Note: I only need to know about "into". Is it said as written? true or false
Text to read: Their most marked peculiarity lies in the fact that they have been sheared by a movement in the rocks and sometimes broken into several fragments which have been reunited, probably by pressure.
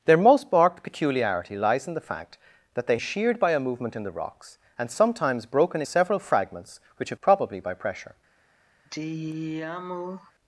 false